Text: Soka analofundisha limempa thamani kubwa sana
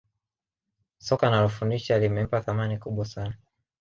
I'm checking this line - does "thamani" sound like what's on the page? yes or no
yes